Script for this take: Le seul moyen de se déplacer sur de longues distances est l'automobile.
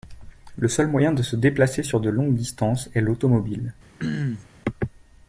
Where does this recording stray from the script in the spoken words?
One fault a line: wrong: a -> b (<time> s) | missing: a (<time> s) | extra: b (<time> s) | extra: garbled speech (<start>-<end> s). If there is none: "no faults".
no faults